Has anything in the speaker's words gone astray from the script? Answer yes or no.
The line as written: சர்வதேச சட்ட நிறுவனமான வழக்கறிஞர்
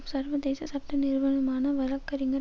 no